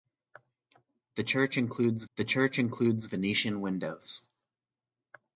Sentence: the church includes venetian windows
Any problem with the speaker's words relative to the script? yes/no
yes